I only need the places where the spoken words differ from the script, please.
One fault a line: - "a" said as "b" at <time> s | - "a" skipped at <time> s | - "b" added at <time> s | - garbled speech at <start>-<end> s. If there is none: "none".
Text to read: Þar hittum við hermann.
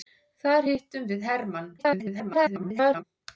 - garbled speech at 1.8-3.0 s